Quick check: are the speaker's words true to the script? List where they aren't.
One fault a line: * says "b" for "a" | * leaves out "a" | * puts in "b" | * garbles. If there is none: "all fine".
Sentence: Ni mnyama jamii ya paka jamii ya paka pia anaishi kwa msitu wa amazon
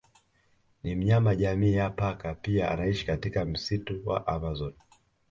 * leaves out "jamii ya paka"
* says "katika" for "kwa"